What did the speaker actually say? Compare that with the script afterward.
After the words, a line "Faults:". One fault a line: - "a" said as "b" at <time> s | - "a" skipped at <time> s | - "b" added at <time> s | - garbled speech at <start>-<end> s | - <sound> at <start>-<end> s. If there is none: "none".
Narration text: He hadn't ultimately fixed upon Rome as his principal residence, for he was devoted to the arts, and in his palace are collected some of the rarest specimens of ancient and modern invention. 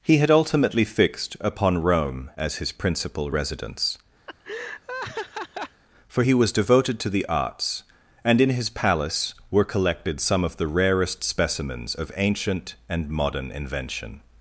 He had ultimately fixed upon Rome as his principal residence, for he was devoted to the arts, and in his palace were collected some of the rarest specimens of ancient and modern invention.
Faults:
- "hadn't" said as "had" at 0.2 s
- laugh at 4.3-5.8 s
- "are" said as "were" at 9.5 s